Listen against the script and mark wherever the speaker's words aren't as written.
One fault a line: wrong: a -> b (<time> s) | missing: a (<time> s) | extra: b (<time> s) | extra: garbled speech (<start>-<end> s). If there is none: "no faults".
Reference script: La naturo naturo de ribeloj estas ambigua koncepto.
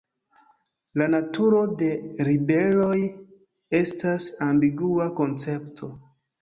missing: naturo (1.6 s)